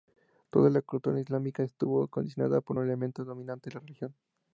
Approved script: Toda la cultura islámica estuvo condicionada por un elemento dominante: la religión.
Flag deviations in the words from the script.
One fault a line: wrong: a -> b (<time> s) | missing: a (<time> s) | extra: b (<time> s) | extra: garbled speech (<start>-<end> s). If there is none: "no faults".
no faults